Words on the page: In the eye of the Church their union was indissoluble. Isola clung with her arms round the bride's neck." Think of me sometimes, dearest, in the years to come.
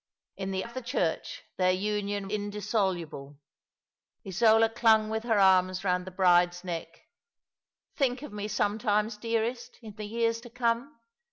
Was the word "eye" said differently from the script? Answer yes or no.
yes